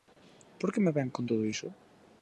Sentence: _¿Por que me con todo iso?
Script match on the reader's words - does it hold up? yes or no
no